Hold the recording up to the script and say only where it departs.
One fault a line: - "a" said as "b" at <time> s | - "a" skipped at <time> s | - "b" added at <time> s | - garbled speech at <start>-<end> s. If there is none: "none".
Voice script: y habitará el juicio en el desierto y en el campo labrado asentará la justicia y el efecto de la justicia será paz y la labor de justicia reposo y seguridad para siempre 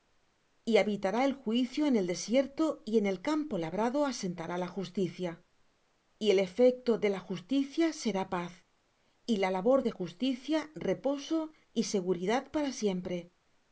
none